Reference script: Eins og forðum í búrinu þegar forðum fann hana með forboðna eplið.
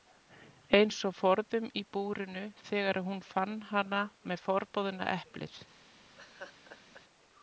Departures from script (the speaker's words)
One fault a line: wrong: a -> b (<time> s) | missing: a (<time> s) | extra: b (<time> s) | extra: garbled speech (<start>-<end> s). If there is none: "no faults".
wrong: forðum -> hún (3.1 s)